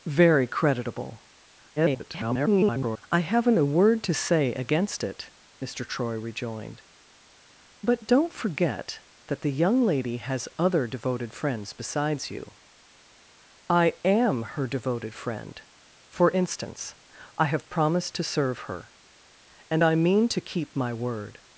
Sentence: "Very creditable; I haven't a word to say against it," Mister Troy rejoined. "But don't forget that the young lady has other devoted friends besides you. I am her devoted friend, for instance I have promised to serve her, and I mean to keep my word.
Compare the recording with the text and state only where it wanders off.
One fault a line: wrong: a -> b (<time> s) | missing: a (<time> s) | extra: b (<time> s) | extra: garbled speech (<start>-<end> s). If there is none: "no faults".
extra: garbled speech (1.8-3.0 s)